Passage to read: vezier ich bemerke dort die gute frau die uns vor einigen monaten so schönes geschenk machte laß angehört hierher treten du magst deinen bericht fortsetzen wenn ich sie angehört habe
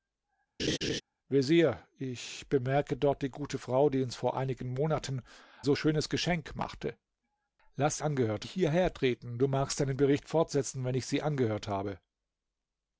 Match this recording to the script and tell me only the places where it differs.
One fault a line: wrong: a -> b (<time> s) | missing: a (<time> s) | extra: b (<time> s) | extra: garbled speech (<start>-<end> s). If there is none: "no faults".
no faults